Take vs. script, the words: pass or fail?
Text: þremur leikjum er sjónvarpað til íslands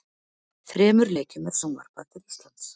pass